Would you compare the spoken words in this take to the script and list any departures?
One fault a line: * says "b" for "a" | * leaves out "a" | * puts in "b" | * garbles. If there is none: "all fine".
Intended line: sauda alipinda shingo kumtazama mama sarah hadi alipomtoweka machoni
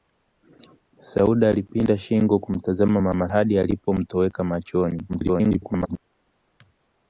* leaves out "sarah"
* garbles